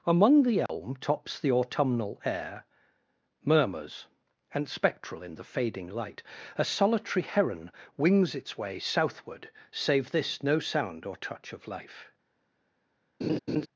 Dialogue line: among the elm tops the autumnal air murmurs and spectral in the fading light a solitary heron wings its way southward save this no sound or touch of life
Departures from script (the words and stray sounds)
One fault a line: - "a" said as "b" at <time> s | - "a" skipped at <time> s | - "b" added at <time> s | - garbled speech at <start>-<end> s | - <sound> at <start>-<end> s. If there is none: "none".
- dropout at 0.7-0.7 s
- laugh at 13.2-13.7 s